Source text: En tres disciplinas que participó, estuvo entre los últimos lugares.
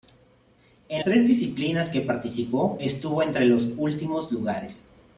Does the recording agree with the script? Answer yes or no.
yes